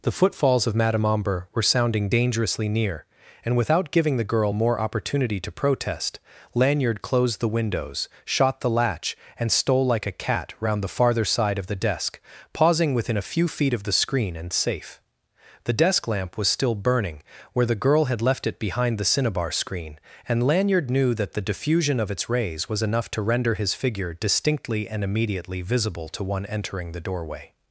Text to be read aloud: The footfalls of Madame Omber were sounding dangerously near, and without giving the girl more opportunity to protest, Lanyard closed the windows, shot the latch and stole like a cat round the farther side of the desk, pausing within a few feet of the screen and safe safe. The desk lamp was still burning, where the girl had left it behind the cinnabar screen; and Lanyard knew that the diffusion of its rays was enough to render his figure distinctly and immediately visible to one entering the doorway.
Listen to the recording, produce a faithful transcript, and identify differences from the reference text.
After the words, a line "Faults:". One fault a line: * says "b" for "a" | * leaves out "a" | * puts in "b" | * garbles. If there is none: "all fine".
The footfalls of Madame Omber were sounding dangerously near, and without giving the girl more opportunity to protest, Lanyard closed the windows, shot the latch and stole like a cat round the farther side of the desk, pausing within a few feet of the screen and safe. The desk lamp was still burning, where the girl had left it behind the cinnabar screen; and Lanyard knew that the diffusion of its rays was enough to render his figure distinctly and immediately visible to one entering the doorway.
Faults:
* leaves out "safe"